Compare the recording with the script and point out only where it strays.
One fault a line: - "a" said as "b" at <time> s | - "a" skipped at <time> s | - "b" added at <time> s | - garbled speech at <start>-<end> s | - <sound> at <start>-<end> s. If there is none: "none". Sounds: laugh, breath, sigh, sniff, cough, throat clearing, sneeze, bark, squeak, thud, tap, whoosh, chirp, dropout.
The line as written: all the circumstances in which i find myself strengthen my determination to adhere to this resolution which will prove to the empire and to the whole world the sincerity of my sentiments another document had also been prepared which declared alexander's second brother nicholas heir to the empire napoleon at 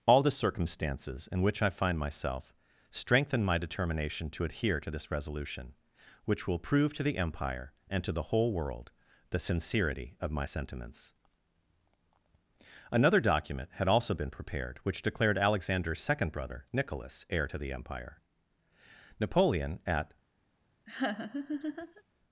- laugh at 20.9-22.0 s